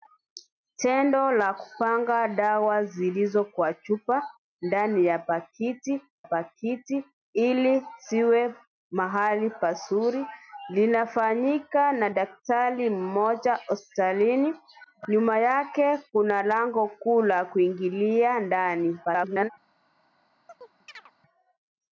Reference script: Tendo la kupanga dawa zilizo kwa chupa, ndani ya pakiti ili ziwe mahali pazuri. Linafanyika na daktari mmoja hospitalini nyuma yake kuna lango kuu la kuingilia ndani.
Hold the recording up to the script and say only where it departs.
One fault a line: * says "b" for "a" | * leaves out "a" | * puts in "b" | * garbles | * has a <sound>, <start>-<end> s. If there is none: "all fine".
* puts in "pakiti"
* garbles
* has a chirp, 20.5-21.1 s